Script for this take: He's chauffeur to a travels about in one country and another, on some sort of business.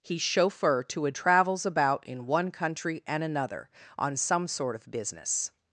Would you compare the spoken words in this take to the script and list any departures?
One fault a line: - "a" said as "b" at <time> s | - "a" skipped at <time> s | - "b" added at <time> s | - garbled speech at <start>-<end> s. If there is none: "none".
none